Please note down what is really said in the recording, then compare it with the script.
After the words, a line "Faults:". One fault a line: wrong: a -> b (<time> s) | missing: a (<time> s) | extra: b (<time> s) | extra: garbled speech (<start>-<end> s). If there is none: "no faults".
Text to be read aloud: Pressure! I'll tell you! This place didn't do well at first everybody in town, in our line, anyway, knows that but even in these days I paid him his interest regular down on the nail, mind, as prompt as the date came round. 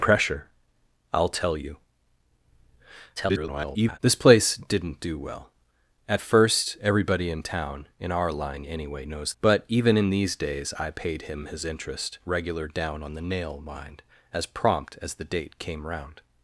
Pressure! I'll tell you! [garbled] This place didn't do well at first everybody in town, in our line, anyway, knows but even in these days I paid him his interest regular down on the nail, mind, as prompt as the date came round.
Faults:
extra: garbled speech (3.2-4.0 s)
missing: that (9.3 s)